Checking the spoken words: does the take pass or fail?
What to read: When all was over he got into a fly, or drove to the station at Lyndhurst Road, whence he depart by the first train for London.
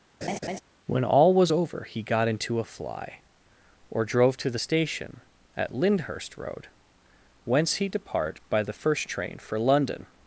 pass